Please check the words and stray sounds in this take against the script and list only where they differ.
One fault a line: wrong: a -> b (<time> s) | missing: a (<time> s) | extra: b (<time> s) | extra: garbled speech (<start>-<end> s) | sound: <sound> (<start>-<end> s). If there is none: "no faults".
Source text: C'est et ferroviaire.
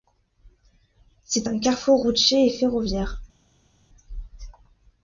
extra: un carrefour routier (1.4 s)